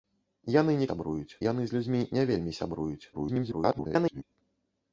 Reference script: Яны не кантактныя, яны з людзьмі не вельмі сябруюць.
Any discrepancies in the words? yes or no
yes